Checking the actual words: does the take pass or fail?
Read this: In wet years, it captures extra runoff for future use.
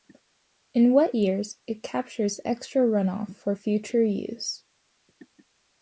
pass